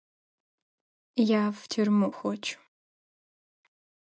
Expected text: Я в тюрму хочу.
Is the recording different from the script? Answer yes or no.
no